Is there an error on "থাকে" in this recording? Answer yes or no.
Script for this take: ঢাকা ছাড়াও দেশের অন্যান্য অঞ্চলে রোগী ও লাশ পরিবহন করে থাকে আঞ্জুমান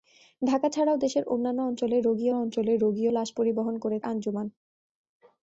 yes